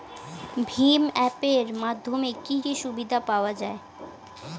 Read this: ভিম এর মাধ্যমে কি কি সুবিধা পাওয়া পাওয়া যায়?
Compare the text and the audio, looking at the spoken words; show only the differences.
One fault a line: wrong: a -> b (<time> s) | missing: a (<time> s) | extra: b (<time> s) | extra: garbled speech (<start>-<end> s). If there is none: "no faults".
extra: অ্যাপ (1.1 s)
missing: পাওয়া (3.5 s)